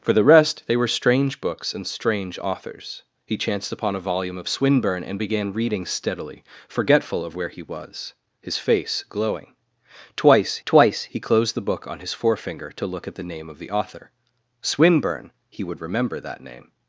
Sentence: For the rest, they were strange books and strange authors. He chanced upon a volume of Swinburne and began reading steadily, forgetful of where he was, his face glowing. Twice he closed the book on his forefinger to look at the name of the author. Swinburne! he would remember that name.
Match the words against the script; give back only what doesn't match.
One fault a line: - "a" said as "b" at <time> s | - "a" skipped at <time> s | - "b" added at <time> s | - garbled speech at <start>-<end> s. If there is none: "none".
- "twice" added at 10.6 s